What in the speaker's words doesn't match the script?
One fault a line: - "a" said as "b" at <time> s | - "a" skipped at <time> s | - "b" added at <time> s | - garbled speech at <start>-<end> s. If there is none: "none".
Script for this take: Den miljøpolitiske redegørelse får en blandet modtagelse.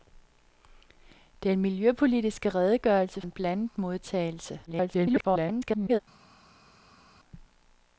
- "får" skipped at 3.2 s
- garbled speech at 4.7-6.0 s